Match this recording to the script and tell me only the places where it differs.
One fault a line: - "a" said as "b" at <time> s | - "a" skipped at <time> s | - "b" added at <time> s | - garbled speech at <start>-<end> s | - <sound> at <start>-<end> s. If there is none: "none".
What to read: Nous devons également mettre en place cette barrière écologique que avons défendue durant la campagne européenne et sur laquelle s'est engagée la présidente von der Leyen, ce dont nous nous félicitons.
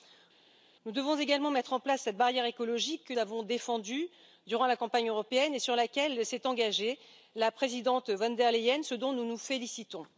none